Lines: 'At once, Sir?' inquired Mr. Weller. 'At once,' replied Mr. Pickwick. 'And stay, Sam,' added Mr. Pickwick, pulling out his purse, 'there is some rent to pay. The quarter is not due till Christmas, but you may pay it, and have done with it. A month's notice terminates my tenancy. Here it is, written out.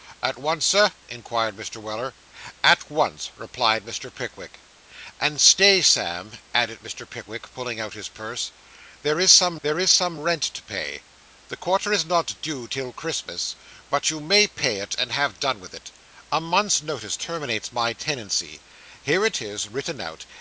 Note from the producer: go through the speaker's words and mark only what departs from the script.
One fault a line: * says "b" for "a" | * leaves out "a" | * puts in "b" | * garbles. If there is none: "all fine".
* puts in "there is some"